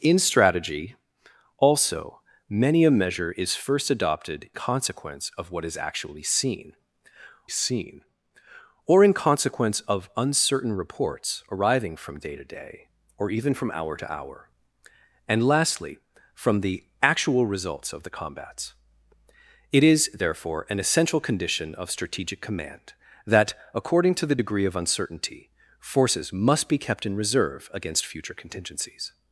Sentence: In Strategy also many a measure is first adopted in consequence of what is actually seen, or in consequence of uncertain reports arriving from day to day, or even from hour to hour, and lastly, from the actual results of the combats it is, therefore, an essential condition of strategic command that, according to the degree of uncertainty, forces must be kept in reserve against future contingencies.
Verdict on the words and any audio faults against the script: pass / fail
fail